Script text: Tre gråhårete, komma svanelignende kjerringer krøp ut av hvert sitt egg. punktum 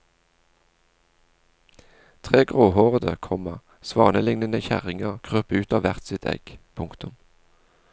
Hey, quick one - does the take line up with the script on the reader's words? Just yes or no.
yes